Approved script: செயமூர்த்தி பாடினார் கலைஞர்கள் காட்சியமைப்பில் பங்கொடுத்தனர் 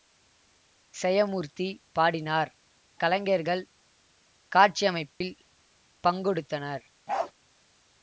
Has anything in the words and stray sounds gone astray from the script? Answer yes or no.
yes